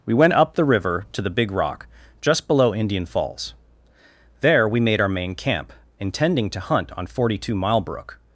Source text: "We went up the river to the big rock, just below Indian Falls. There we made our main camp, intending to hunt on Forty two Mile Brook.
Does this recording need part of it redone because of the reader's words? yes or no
no